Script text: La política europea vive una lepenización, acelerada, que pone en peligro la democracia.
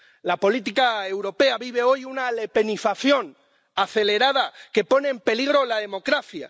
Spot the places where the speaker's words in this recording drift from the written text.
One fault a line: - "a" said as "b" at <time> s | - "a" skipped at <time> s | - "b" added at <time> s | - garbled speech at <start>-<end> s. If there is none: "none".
- "hoy" added at 1.8 s